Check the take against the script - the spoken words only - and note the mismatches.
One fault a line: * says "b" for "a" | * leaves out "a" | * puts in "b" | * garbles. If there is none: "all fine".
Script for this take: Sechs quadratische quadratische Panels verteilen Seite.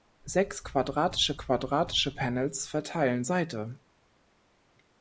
all fine